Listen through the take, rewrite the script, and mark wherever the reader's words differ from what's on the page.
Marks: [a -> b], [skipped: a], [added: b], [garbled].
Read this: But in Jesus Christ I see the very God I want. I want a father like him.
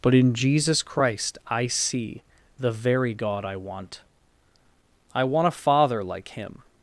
But in Jesus Christ I see the very God I want. I want a father like him.